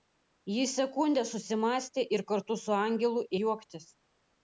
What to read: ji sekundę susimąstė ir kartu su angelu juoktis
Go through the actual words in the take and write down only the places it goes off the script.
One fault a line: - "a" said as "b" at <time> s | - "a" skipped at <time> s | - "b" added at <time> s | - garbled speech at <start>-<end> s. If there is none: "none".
none